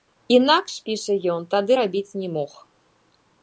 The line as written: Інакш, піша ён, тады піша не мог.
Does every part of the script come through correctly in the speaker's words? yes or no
no